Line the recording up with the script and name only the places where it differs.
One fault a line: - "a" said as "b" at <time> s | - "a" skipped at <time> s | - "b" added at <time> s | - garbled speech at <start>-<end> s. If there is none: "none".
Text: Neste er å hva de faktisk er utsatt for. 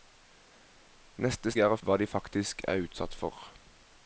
none